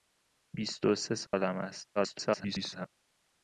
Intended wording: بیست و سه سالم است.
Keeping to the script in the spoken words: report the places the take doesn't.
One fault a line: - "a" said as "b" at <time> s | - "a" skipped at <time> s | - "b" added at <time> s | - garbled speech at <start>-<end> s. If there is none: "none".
- garbled speech at 2.0-2.9 s